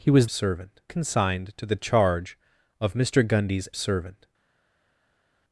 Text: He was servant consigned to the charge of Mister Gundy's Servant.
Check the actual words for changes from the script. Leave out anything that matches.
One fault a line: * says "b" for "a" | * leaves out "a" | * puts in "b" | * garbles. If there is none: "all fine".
all fine